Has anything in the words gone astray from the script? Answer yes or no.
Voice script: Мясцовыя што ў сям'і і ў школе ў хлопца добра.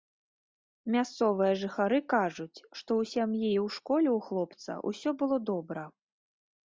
yes